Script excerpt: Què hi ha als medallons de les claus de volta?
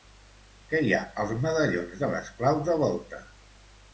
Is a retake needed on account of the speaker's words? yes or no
no